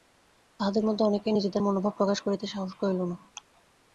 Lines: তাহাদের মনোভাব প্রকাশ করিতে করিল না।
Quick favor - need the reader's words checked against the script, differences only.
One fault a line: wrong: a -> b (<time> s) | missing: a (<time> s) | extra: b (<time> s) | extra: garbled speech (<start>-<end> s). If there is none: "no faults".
extra: মধ্যে অনেকেই নিজেদের (0.8 s)
extra: সাহস (2.5 s)